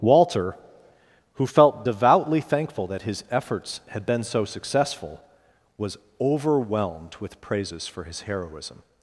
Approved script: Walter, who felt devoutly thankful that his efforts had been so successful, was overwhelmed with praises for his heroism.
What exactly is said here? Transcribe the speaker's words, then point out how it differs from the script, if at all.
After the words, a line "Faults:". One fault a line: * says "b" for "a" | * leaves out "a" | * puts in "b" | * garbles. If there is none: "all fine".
Walter, who felt devoutly thankful that his efforts had been so successful, was overwhelmed with praises for his heroism.
Faults:
all fine